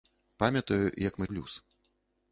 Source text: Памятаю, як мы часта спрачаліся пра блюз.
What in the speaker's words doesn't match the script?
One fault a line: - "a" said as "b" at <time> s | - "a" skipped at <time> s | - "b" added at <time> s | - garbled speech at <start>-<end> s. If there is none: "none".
- "часта спрачаліся пра" skipped at 1.3 s